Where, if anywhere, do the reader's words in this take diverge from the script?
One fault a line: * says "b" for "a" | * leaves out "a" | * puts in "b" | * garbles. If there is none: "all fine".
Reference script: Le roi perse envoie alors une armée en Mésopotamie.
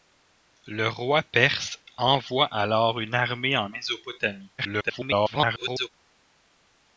* garbles